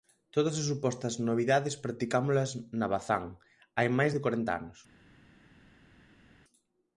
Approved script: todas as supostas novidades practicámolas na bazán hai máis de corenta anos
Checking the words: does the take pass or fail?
pass